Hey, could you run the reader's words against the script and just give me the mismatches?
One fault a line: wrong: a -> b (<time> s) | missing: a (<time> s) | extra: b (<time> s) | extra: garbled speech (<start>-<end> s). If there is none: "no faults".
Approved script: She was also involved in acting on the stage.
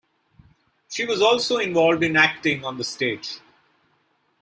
no faults